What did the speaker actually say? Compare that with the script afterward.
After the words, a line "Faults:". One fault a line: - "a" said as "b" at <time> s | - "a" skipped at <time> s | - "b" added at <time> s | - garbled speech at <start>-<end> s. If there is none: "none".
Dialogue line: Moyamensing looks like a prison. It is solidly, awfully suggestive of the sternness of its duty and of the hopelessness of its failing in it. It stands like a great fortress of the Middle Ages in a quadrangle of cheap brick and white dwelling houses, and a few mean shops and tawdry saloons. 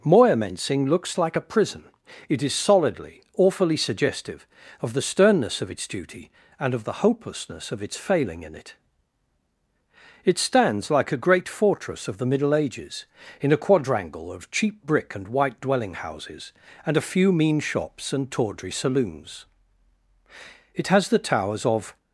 Moyamensing looks like a prison. It is solidly, awfully suggestive of the sternness of its duty and of the hopelessness of its failing in it. It stands like a great fortress of the Middle Ages in a quadrangle of cheap brick and white dwelling houses, and a few mean shops and tawdry saloons. It has the towers of
Faults:
- "It has the towers of" added at 20.7 s